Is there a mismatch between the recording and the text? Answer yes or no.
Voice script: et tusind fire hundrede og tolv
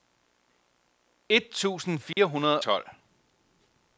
yes